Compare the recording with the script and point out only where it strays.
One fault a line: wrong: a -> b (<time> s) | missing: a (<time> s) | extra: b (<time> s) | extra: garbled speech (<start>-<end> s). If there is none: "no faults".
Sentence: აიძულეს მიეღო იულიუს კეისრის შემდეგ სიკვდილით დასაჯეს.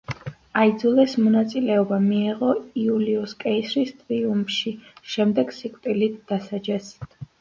extra: მონაწილეობა (1.2 s)
extra: ტრიუმფში (4.0 s)